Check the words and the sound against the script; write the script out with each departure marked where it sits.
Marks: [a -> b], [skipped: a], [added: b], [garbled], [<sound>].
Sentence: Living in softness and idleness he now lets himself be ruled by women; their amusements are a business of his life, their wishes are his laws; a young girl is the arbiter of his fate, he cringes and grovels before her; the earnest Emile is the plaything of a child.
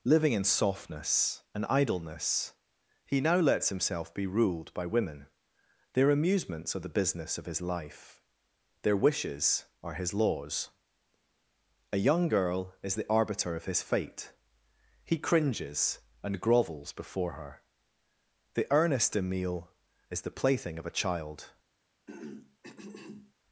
Living in softness and idleness he now lets himself be ruled by women; their amusements are [a -> the] business of his life, their wishes are his laws; a young girl is the arbiter of his fate, he cringes and grovels before her; the earnest Emile is the plaything of a child. [throat clearing]